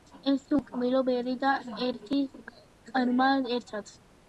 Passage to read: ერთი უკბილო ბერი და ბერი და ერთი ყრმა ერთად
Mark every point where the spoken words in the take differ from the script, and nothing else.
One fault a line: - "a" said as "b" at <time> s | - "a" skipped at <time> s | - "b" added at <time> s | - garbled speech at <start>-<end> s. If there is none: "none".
- "ბერი და" skipped at 1.6 s